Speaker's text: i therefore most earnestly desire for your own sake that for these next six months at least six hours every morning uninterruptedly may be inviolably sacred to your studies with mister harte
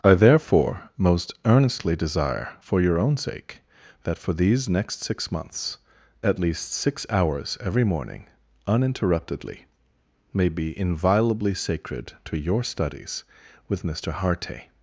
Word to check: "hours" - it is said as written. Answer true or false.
true